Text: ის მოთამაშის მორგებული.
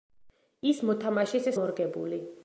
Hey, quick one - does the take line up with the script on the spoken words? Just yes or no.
yes